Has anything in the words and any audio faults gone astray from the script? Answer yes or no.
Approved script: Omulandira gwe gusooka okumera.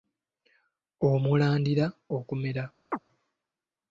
yes